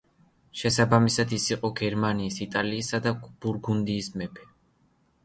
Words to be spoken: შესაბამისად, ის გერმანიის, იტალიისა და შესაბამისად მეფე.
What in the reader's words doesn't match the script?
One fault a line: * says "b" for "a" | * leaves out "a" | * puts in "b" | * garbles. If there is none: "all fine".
* puts in "იყო"
* says "ბურგუნდიის" for "შესაბამისად"